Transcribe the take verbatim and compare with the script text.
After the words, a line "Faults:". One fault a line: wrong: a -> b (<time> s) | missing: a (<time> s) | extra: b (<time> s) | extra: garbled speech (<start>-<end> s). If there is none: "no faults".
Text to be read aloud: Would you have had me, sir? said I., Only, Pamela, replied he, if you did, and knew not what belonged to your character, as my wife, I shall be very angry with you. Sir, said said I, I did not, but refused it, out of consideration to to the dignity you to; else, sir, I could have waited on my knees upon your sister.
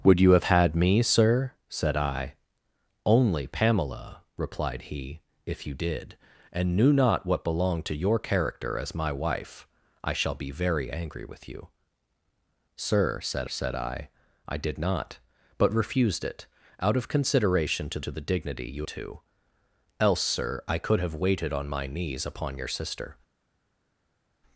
Would you have had me, sir? said I., Only, Pamela, replied he, if you did, and knew not what belonged to your character, as my wife, I shall be very angry with you. Sir, said said I, I did not, but refused it, out of consideration to to the dignity you to; else, sir, I could have waited on my knees upon your sister.
Faults:
no faults